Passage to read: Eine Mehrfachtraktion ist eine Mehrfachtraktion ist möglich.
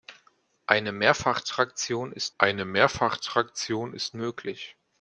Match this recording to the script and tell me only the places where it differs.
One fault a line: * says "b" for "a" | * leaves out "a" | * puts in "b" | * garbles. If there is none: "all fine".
all fine